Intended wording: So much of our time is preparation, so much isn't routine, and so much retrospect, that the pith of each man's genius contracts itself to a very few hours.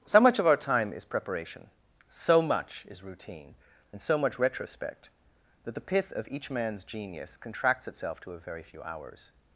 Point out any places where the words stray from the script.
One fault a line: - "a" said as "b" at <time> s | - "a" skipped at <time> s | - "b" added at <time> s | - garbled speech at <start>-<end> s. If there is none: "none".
- "isn't" said as "is" at 2.9 s